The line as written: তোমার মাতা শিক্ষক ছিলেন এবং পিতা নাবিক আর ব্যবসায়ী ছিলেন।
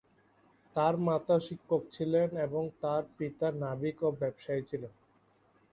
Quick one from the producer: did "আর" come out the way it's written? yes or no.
no